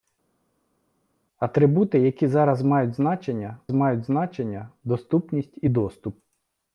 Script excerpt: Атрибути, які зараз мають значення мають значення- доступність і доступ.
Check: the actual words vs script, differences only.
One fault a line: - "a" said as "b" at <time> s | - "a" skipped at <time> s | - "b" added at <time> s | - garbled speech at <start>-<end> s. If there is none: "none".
none